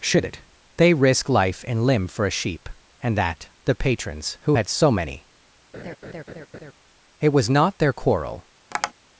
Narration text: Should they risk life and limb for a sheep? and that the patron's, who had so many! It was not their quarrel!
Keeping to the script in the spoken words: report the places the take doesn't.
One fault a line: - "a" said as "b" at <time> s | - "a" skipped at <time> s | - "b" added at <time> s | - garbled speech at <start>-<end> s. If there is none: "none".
- "it" added at 0.2 s